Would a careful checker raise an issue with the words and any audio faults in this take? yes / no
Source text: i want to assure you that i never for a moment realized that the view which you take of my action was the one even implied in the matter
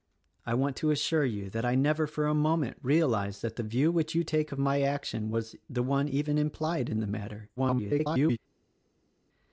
yes